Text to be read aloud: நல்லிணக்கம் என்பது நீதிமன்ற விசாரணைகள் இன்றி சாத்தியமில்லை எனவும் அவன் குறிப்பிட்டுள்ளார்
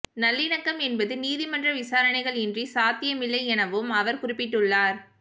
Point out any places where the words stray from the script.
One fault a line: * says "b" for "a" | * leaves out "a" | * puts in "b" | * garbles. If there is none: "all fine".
* says "அவர்" for "அவன்"